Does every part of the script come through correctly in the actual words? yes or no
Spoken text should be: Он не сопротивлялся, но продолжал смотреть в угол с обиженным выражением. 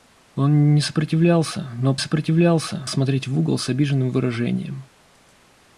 no